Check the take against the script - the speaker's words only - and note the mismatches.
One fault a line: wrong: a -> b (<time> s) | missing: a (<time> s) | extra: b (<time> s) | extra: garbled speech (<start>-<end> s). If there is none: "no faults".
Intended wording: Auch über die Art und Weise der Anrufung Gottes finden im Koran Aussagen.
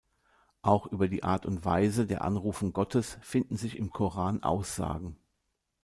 extra: sich (3.6 s)